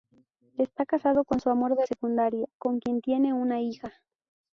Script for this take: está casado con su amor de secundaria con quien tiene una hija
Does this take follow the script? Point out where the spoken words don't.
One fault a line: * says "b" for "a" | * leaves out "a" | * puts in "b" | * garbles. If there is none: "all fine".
all fine